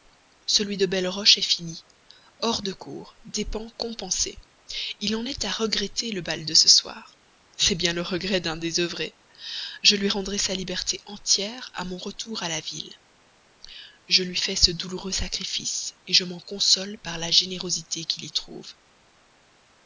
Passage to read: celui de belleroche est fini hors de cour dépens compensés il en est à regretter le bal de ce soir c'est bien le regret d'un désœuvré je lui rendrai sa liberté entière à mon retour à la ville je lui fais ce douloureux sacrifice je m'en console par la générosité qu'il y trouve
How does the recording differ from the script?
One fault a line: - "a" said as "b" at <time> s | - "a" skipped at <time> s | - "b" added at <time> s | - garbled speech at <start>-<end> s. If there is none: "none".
none